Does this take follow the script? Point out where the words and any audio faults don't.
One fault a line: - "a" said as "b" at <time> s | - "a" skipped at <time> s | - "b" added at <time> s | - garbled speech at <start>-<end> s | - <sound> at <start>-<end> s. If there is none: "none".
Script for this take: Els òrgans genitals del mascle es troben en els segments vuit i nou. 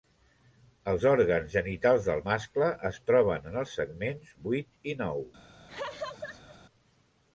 - laugh at 5.7-6.6 s